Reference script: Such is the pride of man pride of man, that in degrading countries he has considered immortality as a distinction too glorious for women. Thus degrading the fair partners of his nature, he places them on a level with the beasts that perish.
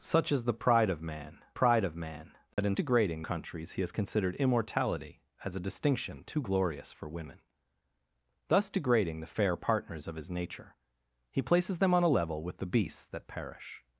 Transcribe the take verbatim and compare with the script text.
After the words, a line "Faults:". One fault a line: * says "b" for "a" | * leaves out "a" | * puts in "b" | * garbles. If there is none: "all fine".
Such is the pride of man pride of man, that in degrading countries he has considered immortality as a distinction too glorious for women. Thus degrading the fair partners of his nature, he places them on a level with the beasts that perish.
Faults:
all fine